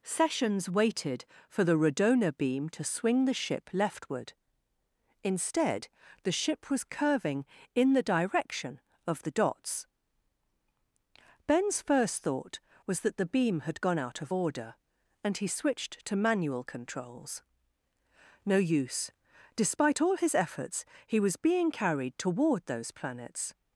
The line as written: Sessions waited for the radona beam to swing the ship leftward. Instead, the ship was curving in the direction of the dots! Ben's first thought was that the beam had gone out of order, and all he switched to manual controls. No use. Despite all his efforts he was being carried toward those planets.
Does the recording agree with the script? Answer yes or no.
no